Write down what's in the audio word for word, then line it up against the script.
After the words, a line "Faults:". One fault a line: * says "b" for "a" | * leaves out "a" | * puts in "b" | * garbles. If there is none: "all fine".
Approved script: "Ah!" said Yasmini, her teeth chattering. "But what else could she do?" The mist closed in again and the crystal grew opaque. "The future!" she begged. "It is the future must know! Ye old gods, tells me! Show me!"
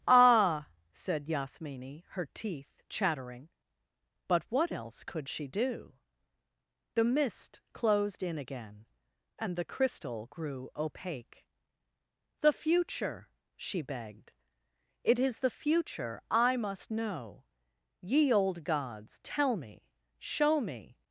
"Ah!" said Yasmini, her teeth chattering. "But what else could she do?" The mist closed in again and the crystal grew opaque. "The future!" she begged. "It is the future I must know! Ye old gods, tell me! Show me!"
Faults:
* puts in "I"
* says "tell" for "tells"